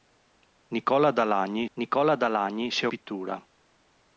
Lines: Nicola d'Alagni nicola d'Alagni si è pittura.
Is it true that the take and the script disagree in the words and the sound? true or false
false